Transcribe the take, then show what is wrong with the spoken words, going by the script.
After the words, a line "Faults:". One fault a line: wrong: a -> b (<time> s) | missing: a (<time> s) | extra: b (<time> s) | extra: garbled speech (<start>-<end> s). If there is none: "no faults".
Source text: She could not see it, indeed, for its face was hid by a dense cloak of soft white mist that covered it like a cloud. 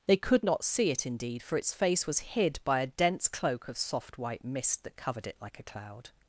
They could not see it, indeed, for its face was hid by a dense cloak of soft white mist that covered it like a cloud.
Faults:
wrong: She -> They (0.1 s)